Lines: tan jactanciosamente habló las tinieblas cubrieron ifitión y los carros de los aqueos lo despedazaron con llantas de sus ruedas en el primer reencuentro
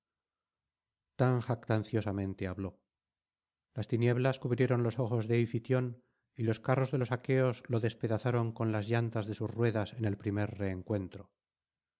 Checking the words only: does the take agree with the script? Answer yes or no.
no